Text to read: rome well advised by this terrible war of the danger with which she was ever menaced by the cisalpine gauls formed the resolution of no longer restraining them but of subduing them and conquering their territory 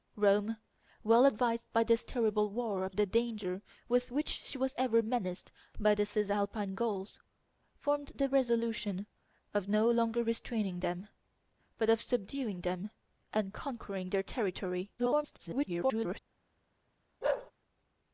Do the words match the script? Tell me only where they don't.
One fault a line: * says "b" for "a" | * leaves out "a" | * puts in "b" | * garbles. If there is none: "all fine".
* garbles